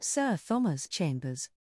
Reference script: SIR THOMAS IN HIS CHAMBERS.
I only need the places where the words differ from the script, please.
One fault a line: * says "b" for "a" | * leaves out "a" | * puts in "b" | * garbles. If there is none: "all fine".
* leaves out "IN HIS"